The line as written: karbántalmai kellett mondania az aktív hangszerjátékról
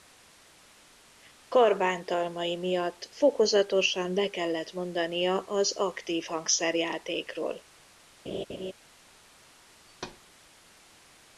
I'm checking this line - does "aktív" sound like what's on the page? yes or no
yes